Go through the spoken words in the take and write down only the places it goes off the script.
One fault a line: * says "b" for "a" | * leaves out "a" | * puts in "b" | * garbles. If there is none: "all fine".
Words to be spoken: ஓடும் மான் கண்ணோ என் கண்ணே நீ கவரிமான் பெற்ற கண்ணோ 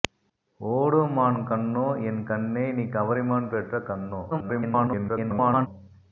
* garbles